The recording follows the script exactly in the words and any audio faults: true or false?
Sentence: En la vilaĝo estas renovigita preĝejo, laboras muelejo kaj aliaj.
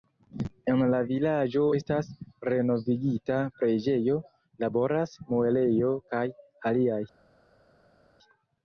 true